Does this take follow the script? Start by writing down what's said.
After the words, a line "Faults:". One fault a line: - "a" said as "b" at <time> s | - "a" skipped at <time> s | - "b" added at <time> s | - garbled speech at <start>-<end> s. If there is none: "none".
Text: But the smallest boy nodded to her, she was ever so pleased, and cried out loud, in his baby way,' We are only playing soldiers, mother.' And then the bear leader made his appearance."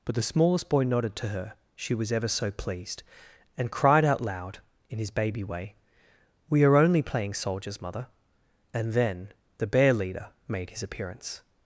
But the smallest boy nodded to her, she was ever so pleased, and cried out loud, in his baby way,' We are only playing soldiers, mother.' And then the bear leader made his appearance."
Faults:
none